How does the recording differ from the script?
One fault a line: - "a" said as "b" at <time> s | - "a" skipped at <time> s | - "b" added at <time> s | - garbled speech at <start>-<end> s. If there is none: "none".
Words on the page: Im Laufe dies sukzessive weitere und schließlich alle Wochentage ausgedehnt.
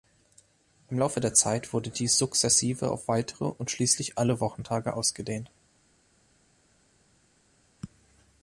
- "der Zeit wurde" added at 1.2 s
- "auf" added at 2.9 s